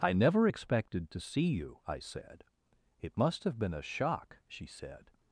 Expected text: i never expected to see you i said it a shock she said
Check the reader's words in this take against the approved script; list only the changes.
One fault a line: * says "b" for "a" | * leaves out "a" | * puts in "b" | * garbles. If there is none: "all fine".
* puts in "must have been"